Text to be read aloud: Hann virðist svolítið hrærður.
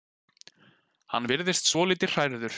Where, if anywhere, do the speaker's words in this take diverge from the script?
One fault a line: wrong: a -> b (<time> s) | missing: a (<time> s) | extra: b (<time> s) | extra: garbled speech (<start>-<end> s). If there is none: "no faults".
no faults